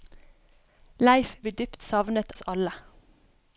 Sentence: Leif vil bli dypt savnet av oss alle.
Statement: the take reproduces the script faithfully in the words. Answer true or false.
false